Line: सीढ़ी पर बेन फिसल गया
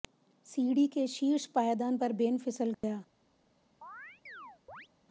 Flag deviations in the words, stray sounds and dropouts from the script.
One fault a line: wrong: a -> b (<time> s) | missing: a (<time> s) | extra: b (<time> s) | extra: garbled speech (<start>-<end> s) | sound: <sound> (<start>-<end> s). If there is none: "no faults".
extra: के शीर्ष पायदान (0.9 s)
sound: dropout (2.7-2.8 s)
sound: chirp (3.8-4.9 s)